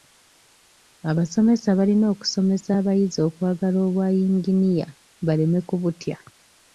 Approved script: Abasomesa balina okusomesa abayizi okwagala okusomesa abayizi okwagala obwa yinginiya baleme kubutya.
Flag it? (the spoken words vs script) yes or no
yes